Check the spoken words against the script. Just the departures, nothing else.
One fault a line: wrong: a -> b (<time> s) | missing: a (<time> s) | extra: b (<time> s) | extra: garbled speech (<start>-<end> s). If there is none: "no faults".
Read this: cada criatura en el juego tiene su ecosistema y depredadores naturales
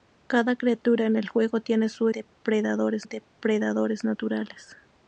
wrong: ecosistema -> depredadores (2.1 s)